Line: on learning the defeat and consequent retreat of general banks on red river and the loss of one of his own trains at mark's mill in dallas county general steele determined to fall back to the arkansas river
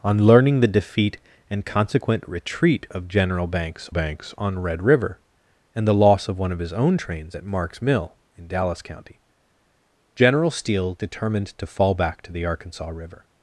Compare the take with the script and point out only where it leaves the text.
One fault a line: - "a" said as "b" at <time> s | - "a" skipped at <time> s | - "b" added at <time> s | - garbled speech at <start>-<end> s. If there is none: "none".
- "banks" added at 3.9 s